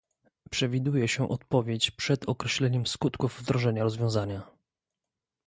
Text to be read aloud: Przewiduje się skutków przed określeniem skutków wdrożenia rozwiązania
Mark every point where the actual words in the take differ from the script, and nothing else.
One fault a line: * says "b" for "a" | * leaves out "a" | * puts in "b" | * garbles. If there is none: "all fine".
* says "odpowiedź" for "skutków"